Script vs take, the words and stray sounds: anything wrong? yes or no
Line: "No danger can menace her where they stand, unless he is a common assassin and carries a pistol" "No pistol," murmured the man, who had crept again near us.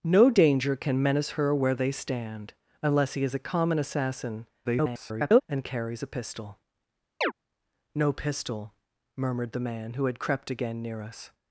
yes